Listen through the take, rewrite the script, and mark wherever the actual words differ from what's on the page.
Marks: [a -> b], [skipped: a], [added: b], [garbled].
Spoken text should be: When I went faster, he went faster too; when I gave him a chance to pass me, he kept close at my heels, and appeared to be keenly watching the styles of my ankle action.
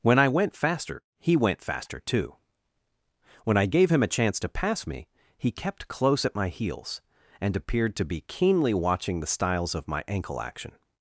When I went faster, he went faster too; when I gave him a chance to pass me, he kept close at my heels, and appeared to be keenly watching the styles of my ankle action.